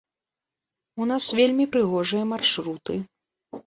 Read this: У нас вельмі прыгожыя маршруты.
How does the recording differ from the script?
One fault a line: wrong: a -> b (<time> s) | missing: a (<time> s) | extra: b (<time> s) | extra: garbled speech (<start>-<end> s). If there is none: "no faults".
no faults